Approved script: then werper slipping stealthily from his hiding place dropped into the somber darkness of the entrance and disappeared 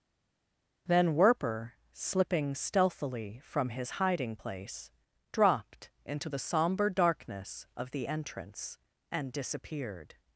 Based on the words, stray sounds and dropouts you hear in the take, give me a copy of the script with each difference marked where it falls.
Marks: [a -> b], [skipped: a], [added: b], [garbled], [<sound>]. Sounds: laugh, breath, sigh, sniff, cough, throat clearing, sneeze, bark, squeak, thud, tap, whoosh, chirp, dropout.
then werper slipping stealthily from his hiding place dropped into the somber darkness of the entrance and disappeared